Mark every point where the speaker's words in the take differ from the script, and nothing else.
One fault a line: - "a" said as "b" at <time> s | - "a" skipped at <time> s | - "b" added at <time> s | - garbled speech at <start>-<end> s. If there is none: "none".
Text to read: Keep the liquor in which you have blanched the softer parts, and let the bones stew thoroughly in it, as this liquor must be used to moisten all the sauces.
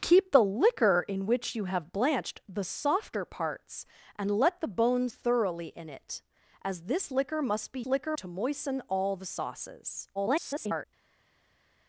- "stew" skipped at 5.1 s
- "used" said as "liquor" at 7.9 s
- garbled speech at 10.1-10.9 s